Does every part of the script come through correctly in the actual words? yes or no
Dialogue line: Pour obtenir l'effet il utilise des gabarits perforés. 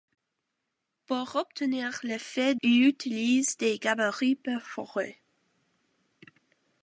yes